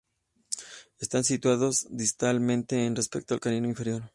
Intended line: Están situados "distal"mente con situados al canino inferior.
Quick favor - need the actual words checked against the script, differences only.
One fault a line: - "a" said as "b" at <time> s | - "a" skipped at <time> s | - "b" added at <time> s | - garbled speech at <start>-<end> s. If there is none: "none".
- "situados" said as "respecto" at 3.0 s